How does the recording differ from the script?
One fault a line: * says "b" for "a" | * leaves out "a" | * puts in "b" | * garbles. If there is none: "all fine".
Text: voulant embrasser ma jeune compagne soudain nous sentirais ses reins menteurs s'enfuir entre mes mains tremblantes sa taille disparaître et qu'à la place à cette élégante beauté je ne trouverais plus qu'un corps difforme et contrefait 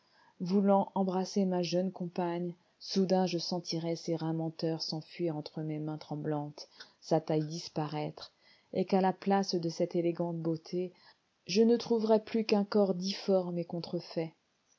* says "je" for "nous"
* says "de" for "à"